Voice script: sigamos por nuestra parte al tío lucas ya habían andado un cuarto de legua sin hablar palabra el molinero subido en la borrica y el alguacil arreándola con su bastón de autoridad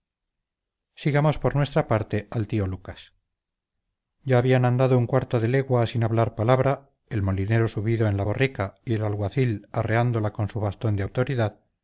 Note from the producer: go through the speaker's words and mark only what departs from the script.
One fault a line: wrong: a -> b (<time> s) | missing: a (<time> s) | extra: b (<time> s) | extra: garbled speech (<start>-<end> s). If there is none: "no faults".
no faults